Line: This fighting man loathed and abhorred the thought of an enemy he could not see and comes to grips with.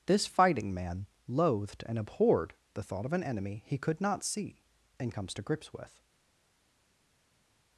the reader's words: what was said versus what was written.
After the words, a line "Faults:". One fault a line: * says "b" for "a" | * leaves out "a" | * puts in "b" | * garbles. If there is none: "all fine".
This fighting man loathed and abhorred the thought of an enemy he could not see and comes to grips with.
Faults:
all fine